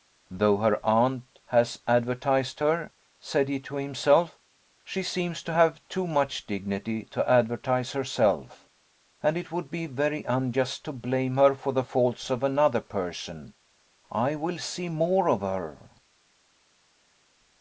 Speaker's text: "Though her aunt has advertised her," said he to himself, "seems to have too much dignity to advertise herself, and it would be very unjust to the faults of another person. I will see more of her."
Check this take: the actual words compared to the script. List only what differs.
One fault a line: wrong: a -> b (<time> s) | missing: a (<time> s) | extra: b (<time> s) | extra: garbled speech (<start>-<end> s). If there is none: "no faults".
extra: she (4.8 s)
extra: blame her for (10.9 s)